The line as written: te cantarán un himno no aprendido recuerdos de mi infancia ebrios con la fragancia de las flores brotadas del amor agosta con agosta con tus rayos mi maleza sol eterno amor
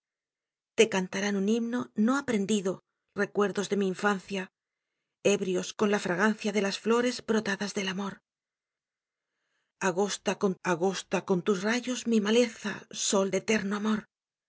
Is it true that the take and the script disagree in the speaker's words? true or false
false